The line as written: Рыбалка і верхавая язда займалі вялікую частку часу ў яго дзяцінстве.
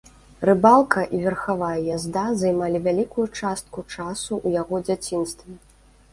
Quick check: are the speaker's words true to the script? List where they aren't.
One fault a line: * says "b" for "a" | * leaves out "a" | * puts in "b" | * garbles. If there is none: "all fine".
all fine